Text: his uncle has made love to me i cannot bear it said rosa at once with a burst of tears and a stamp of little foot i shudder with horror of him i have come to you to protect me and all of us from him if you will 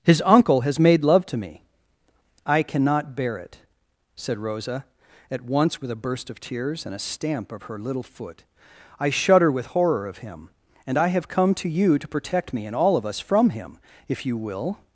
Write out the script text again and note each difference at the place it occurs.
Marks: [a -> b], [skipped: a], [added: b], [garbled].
his uncle has made love to me i cannot bear it said rosa at once with a burst of tears and a stamp of [added: her] little foot i shudder with horror of him [added: and] i have come to you to protect me and all of us from him if you will